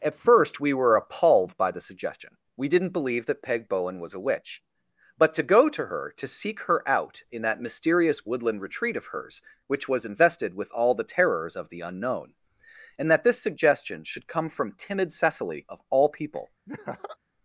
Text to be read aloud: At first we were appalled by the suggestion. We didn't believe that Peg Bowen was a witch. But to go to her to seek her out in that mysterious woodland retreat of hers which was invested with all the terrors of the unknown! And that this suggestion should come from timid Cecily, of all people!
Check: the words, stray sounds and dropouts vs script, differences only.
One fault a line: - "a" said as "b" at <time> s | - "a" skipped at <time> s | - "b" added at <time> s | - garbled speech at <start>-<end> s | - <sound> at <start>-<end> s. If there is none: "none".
- laugh at 16.7-17.2 s